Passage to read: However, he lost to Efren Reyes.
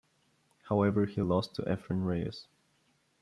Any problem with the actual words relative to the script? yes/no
no